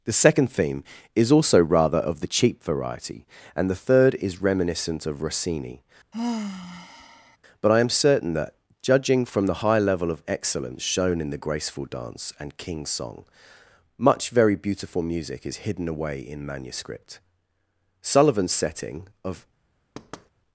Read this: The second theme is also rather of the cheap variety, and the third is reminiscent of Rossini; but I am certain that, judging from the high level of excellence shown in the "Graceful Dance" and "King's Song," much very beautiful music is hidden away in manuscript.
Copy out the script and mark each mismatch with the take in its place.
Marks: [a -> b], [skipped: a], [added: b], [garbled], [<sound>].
The second theme is also rather of the cheap variety, and the third is reminiscent of Rossini; [sigh] but I am certain that, judging from the high level of excellence shown in the "Graceful Dance" and "King's Song," much very beautiful music is hidden away in manuscript. [added: Sullivan's setting of] [thud]